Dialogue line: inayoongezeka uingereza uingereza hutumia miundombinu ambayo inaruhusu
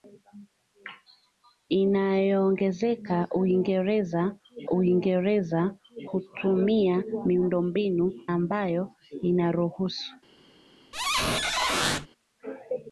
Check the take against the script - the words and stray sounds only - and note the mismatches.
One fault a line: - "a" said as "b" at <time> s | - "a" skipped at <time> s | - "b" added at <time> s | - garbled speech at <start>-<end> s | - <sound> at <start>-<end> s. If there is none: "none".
- squeak at 10.9-12.1 s